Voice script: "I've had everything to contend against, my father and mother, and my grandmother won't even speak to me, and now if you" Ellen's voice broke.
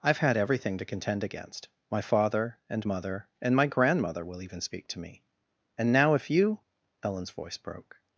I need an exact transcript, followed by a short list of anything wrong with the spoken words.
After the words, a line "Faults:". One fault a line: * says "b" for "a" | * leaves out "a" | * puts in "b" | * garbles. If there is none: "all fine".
"I've had everything to contend against, my father and mother, and my grandmother will even speak to me, and now if you" Ellen's voice broke.
Faults:
* says "will" for "won't"